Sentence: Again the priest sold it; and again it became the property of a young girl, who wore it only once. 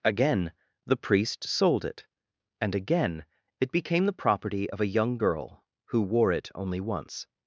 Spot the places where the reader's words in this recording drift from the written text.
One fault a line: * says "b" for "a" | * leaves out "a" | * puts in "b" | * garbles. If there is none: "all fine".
all fine